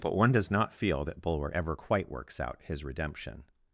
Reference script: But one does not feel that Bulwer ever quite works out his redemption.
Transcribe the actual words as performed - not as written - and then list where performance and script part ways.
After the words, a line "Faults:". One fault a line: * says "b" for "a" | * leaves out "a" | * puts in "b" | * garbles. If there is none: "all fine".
But one does not feel that Bulwer ever quite works out his redemption.
Faults:
all fine